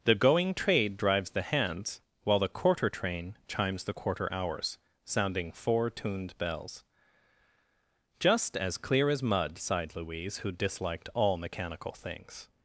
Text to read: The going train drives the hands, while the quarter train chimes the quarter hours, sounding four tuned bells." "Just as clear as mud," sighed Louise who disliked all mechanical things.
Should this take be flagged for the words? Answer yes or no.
yes